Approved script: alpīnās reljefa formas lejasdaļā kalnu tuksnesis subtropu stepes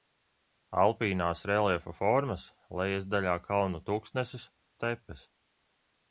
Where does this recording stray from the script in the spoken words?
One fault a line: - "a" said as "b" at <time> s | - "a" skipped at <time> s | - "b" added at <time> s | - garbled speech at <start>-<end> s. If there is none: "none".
- "subtropu" skipped at 4.5 s